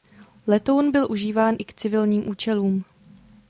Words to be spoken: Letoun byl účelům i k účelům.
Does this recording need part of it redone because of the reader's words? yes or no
yes